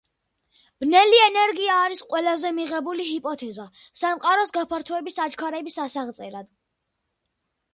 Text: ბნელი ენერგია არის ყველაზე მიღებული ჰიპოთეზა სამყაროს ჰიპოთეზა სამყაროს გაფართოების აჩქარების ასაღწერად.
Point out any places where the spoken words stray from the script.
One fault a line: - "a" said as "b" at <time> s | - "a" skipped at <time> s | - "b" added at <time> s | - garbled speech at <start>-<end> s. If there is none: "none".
- "ჰიპოთეზა სამყაროს" skipped at 4.5 s